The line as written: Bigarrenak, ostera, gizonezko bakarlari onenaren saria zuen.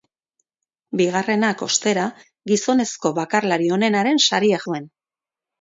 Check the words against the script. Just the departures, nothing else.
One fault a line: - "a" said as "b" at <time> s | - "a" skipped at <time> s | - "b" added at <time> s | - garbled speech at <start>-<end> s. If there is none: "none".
none